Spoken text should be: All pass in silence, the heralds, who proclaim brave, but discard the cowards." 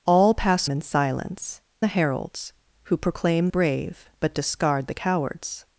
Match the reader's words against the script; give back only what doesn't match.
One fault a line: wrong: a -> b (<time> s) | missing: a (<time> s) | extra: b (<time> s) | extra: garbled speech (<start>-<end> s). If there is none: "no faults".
no faults